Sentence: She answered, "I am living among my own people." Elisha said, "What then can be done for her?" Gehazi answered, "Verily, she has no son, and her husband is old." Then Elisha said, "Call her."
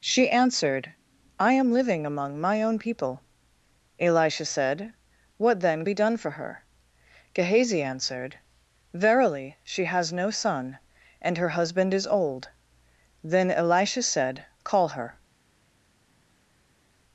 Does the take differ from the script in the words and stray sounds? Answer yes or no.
yes